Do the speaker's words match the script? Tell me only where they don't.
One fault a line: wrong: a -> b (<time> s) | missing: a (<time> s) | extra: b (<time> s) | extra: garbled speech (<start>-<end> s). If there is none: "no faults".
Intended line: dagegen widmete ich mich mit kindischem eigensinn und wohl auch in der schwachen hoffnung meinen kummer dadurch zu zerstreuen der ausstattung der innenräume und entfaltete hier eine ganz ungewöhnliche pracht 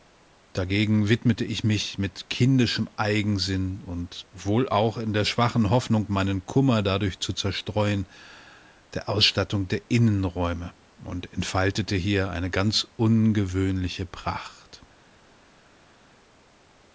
no faults